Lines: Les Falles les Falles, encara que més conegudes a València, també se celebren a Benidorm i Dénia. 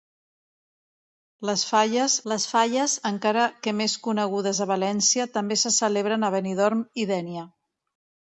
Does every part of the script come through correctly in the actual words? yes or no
yes